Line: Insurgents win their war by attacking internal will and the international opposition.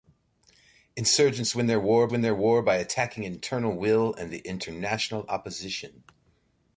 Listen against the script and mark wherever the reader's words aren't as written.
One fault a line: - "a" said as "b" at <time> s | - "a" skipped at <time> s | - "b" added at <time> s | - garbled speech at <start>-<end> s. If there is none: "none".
- "win their war" added at 2.1 s